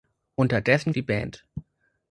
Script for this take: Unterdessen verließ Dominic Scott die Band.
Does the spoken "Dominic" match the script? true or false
false